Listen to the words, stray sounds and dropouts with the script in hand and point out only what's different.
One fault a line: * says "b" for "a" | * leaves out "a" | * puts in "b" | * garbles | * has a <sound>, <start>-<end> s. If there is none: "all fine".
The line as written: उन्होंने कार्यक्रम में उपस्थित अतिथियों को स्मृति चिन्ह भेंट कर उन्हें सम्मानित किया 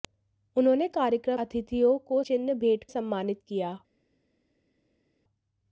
* leaves out "में उपस्थित"
* leaves out "स्मृति"
* leaves out "कर उन्हें"